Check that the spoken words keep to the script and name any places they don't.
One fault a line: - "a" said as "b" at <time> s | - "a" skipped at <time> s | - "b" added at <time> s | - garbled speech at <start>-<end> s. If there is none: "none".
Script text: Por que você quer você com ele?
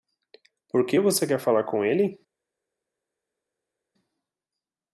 - "você" said as "falar" at 1.4 s